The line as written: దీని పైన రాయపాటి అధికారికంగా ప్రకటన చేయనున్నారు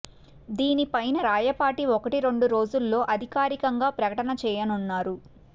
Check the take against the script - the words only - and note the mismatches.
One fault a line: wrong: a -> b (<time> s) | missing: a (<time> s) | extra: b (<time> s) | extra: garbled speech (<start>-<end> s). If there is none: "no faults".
extra: ఒకటి రెండు రోజుల్లో (1.9 s)